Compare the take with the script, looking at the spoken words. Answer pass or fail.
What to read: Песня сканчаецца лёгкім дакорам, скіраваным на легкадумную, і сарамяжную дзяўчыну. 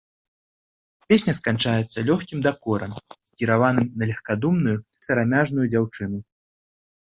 pass